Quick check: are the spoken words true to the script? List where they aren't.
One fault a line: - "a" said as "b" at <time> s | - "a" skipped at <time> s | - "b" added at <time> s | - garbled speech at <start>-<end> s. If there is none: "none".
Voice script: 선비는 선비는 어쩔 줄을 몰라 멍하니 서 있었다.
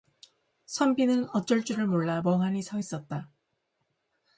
- "선비는" skipped at 1.3 s